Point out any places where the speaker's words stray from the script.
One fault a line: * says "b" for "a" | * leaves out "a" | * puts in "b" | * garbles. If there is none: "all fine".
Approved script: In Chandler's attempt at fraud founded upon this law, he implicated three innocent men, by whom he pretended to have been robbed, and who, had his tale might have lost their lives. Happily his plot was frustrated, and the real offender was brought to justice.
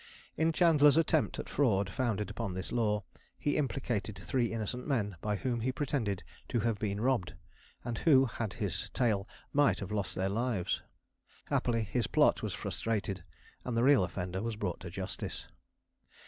all fine